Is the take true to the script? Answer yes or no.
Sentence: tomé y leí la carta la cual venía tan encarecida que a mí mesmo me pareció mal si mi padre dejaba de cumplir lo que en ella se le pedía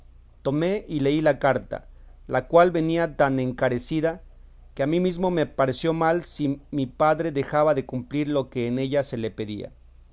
yes